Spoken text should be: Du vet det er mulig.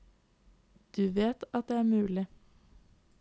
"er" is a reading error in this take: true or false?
false